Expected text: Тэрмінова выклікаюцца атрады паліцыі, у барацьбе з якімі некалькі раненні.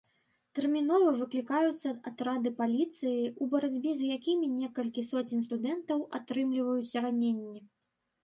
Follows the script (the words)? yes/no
no